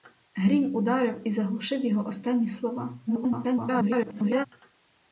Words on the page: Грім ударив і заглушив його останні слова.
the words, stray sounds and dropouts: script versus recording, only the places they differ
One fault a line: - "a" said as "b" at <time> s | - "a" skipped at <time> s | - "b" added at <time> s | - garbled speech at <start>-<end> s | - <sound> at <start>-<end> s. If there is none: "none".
- garbled speech at 3.1-4.5 s